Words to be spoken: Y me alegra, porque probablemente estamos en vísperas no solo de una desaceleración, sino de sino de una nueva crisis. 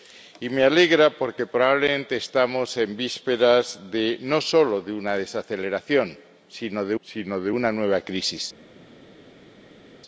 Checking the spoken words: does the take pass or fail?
pass